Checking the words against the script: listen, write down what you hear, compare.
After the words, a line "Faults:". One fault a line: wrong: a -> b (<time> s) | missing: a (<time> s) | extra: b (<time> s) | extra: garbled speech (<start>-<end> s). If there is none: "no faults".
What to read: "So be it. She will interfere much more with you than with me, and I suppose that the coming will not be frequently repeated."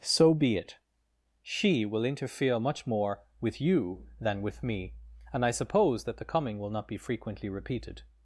"So be it. She will interfere much more with you than with me, and I suppose that the coming will not be frequently repeated."
Faults:
no faults